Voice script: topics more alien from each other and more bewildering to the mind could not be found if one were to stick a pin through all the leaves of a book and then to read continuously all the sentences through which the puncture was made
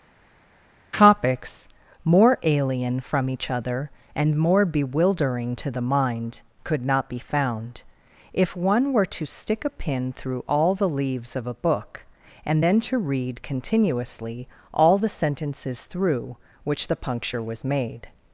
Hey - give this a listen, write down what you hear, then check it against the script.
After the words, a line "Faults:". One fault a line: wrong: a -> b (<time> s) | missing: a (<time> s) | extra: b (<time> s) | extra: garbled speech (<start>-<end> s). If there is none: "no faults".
topics more alien from each other and more bewildering to the mind could not be found if one were to stick a pin through all the leaves of a book and then to read continuously all the sentences through which the puncture was made
Faults:
no faults